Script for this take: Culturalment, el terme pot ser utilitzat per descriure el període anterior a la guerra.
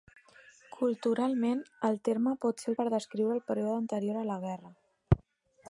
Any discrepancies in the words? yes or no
yes